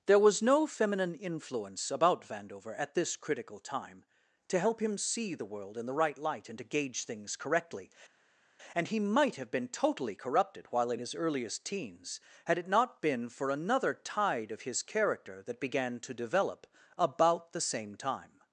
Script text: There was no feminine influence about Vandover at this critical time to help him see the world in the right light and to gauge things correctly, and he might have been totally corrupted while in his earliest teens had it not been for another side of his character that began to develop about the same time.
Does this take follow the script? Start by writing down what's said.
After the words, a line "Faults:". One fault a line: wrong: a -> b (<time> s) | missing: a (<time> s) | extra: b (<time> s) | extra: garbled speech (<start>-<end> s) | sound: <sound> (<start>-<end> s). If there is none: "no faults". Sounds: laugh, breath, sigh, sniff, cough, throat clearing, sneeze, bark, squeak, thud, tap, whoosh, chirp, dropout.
There was no feminine influence about Vandover at this critical time to help him see the world in the right light and to gauge things correctly, and he might have been totally corrupted while in his earliest teens had it not been for another tide of his character that began to develop about the same time.
Faults:
wrong: side -> tide (14.0 s)